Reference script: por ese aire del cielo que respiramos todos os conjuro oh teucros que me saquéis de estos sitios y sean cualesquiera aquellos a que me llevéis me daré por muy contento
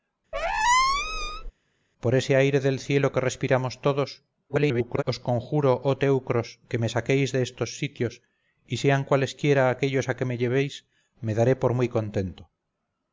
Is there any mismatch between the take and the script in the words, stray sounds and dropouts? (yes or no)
yes